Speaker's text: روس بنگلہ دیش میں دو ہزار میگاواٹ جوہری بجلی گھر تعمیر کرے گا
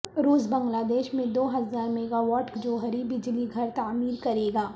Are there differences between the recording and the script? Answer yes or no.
no